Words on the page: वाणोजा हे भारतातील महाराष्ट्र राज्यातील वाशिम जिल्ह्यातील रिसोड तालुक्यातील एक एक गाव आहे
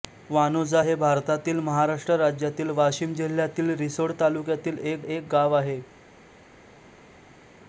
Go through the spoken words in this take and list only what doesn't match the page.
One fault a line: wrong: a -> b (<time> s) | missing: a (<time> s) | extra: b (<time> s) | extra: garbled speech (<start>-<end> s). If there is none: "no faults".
no faults